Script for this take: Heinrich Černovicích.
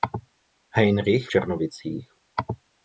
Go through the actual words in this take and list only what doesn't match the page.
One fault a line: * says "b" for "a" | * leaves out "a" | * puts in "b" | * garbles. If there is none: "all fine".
all fine